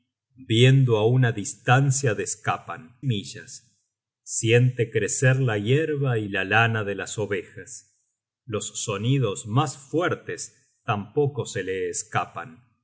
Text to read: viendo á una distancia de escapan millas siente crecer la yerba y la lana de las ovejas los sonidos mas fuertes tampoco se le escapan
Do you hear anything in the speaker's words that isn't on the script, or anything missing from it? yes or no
no